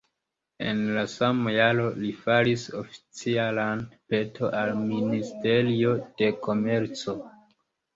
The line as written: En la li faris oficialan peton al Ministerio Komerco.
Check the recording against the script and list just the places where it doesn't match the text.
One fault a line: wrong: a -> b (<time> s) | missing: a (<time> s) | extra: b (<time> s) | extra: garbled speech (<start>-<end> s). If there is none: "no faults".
extra: sama jaro (1.1 s)
extra: de (6.2 s)